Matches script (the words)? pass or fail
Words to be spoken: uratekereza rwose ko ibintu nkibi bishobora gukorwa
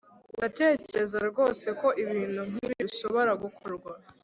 pass